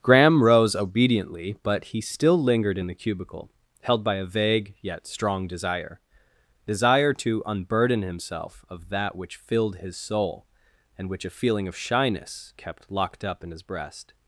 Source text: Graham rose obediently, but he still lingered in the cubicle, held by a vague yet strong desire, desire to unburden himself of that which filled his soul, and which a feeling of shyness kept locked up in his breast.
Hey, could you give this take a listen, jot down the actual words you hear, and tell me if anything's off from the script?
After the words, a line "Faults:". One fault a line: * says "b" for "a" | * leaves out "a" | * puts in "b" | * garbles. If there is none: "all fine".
Graham rose obediently, but he still lingered in the cubicle, held by a vague yet strong desire, desire to unburden himself of that which filled his soul, and which a feeling of shyness kept locked up in his breast.
Faults:
all fine